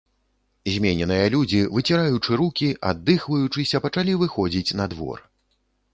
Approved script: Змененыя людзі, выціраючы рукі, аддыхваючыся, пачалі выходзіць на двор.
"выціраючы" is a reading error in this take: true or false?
false